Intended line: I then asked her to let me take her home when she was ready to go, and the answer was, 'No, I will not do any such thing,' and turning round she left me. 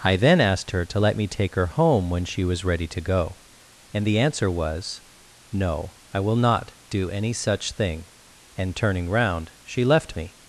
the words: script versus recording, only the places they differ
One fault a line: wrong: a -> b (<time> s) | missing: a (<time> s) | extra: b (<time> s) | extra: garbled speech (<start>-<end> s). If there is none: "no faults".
no faults